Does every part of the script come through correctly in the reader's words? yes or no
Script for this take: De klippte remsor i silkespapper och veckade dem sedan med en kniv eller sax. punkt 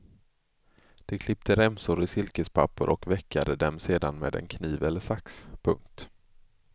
yes